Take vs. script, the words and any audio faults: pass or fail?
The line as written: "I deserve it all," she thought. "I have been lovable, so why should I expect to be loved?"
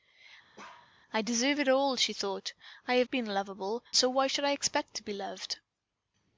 fail